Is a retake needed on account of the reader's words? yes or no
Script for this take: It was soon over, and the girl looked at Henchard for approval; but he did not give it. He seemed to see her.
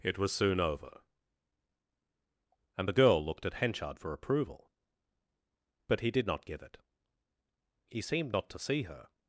yes